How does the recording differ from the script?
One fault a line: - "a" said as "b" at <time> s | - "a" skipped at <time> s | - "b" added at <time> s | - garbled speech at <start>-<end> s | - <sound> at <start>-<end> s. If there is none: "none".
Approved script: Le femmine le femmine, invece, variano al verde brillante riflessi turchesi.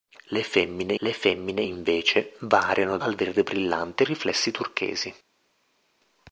none